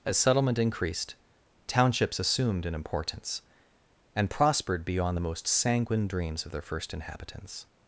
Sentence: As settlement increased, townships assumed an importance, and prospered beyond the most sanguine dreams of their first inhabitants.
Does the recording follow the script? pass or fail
pass